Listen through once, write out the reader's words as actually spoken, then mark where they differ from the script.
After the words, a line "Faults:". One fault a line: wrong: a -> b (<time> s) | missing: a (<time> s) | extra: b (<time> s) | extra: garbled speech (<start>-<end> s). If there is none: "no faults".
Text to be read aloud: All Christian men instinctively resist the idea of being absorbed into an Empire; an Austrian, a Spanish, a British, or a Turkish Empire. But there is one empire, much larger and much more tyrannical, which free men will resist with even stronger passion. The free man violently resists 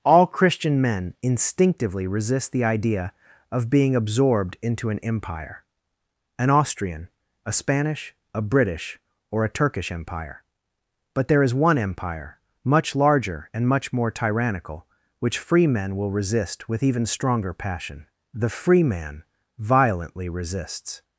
All Christian men instinctively resist the idea of being absorbed into an Empire; an Austrian, a Spanish, a British, or a Turkish Empire. But there is one empire, much larger and much more tyrannical, which free men will resist with even stronger passion. The free man violently resists
Faults:
no faults